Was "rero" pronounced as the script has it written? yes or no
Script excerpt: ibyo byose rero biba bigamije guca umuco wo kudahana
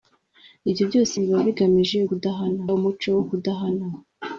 no